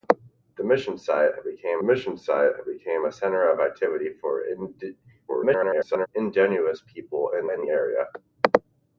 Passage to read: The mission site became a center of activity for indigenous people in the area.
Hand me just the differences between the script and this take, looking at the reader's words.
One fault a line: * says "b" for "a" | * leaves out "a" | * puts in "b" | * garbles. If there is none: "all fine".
* puts in "mission site became"
* garbles
* puts in "in"